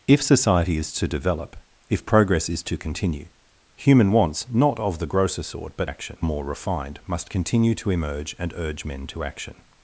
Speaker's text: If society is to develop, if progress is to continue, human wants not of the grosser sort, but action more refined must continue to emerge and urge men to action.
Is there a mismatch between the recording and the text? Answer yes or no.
no